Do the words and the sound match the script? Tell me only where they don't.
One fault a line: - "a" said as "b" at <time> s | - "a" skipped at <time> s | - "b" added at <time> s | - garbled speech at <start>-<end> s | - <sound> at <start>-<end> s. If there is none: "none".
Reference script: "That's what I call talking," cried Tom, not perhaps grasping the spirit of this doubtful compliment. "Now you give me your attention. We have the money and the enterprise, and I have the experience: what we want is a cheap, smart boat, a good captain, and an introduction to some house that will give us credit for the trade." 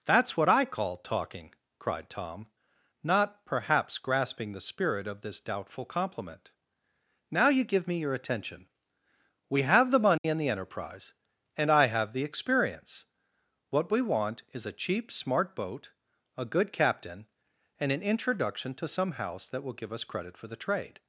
- dropout at 10.2-10.2 s